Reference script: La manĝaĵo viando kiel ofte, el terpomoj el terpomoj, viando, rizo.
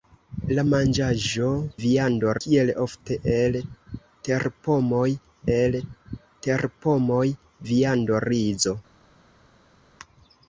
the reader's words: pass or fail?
pass